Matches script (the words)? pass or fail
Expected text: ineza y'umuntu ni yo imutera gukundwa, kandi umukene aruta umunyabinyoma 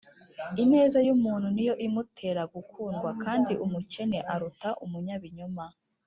pass